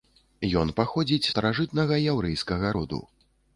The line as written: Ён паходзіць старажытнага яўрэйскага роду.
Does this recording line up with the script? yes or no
yes